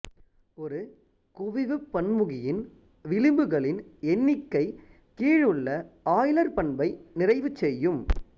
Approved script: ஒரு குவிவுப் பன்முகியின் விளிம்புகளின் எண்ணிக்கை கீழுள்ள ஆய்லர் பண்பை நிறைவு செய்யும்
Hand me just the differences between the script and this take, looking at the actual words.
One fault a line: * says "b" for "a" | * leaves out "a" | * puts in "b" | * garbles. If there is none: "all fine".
all fine